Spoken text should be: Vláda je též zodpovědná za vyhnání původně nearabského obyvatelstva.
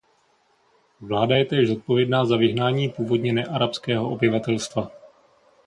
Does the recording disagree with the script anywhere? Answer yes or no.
no